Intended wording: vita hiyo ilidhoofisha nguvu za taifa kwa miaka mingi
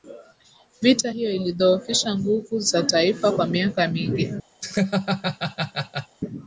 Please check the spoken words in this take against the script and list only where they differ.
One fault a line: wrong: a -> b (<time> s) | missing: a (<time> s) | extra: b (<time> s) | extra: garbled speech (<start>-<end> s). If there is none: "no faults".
no faults